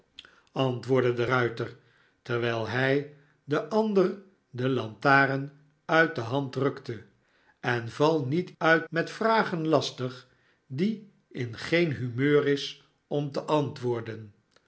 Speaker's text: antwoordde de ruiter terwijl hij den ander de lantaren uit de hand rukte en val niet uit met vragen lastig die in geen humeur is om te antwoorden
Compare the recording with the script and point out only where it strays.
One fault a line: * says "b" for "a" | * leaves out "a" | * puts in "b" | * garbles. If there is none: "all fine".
all fine